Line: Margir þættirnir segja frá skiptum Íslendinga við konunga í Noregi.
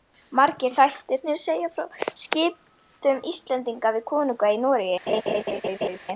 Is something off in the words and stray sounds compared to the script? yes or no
yes